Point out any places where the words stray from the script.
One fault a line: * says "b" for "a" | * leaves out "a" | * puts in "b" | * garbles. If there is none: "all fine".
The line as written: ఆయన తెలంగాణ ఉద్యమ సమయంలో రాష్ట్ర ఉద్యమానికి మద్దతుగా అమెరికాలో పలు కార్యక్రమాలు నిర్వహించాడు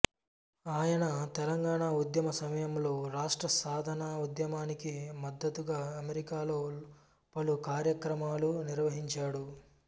* puts in "సాధన"